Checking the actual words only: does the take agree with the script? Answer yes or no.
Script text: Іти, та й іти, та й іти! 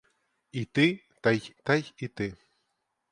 no